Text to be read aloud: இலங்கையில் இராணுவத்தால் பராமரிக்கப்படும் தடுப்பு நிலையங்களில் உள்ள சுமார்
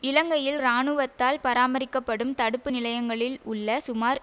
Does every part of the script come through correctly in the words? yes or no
yes